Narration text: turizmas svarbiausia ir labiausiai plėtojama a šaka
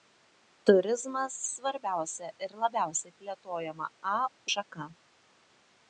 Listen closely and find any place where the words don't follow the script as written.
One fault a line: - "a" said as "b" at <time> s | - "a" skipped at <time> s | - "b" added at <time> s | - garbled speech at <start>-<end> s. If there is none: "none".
none